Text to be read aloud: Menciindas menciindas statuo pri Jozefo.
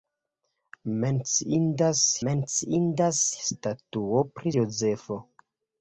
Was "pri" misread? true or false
false